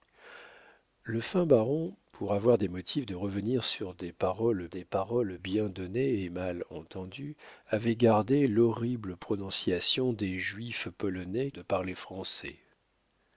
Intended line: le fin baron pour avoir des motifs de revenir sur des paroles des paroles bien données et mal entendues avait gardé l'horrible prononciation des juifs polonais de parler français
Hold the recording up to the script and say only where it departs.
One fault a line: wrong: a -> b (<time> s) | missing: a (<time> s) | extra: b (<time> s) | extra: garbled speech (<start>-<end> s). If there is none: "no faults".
no faults